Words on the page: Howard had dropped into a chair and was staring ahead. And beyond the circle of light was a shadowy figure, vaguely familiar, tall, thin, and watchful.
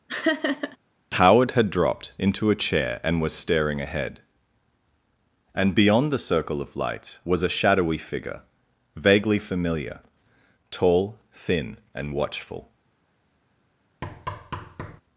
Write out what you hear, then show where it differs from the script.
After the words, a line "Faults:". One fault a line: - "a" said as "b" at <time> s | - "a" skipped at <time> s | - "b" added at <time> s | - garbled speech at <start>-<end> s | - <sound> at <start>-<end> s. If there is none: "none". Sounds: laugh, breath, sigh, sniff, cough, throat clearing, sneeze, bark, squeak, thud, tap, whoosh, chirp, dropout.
Howard had dropped into a chair and was staring ahead. And beyond the circle of light was a shadowy figure, vaguely familiar, tall, thin, and watchful.
Faults:
- laugh at 0.1-0.8 s
- thud at 14.0-15.0 s